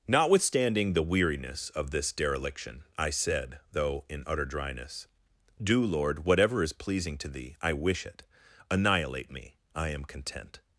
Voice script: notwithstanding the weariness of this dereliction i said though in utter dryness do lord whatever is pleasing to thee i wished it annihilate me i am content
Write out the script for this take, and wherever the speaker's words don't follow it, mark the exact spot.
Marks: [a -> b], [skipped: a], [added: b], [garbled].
notwithstanding the weariness of this dereliction i said though in utter dryness do lord whatever is pleasing to thee i [wished -> wish] it annihilate me i am content